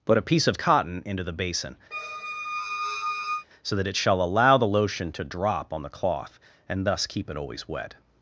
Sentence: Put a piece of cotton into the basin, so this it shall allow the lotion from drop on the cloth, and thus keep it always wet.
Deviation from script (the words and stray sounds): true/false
true